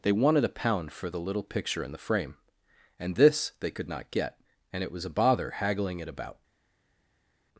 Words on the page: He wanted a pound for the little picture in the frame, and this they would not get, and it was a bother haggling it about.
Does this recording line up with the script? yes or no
no